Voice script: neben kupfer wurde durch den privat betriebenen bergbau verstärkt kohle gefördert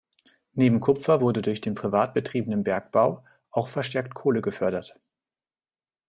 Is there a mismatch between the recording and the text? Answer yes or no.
yes